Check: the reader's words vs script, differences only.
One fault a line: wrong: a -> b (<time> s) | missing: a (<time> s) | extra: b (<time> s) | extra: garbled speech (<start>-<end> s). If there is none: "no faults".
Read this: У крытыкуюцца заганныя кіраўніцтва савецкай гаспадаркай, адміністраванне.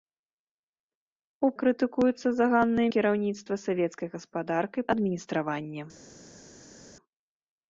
no faults